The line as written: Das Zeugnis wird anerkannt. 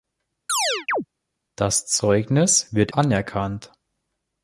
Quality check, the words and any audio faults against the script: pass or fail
fail